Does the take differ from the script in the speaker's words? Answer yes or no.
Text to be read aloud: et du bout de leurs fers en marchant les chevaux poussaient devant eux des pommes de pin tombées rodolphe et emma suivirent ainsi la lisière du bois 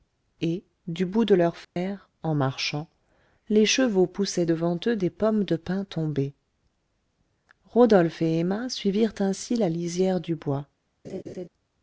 no